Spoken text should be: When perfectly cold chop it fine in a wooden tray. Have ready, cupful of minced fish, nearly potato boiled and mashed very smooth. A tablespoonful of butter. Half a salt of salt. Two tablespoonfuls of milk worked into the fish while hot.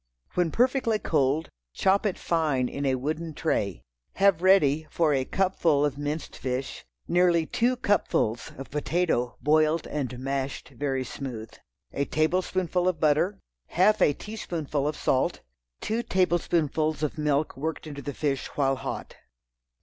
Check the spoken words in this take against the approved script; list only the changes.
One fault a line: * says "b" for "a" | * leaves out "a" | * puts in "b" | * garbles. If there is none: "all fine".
* puts in "for a"
* puts in "two cupfuls of"
* says "teaspoonful" for "salt"